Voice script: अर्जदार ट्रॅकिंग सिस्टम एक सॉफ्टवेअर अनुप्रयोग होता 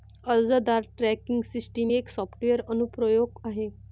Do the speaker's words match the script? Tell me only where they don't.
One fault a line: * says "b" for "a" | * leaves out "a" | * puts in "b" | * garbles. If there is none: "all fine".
* says "आहे" for "होता"